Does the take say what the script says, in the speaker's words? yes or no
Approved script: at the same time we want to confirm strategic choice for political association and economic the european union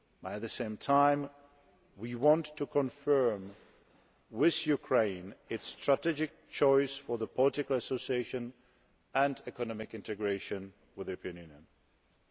no